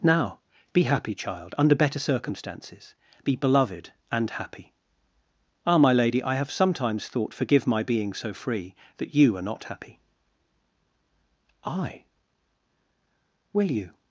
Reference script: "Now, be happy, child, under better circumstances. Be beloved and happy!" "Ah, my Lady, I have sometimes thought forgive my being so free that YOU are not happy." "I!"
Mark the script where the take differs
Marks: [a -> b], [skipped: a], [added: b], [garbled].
"Now, be happy, child, under better circumstances. Be beloved and happy!" "Ah, my Lady, I have sometimes thought forgive my being so free that YOU are not happy." "I!" [added: Will you]